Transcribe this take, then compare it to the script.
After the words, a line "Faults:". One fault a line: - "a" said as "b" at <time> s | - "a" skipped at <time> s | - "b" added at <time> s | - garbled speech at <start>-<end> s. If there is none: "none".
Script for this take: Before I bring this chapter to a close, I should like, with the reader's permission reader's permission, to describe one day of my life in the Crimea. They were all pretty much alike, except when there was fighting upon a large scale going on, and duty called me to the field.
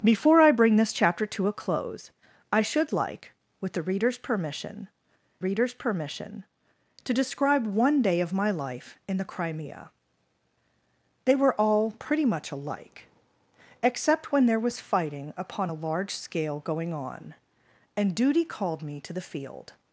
Before I bring this chapter to a close, I should like, with the reader's permission reader's permission, to describe one day of my life in the Crimea. They were all pretty much alike, except when there was fighting upon a large scale going on, and duty called me to the field.
Faults:
none